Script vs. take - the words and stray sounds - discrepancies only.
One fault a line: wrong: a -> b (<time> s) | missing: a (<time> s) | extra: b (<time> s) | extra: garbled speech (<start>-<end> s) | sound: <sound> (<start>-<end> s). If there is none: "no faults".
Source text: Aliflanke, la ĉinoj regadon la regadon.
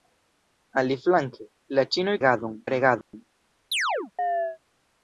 sound: dropout (3.0-3.1 s)
sound: chirp (3.7-4.6 s)